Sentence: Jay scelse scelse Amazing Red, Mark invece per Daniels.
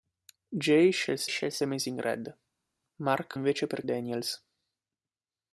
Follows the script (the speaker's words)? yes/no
yes